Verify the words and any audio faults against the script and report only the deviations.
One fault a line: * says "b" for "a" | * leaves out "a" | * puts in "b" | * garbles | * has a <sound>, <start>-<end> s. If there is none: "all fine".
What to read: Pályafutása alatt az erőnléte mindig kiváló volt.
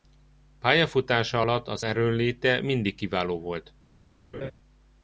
* has a laugh, 4.3-4.5 s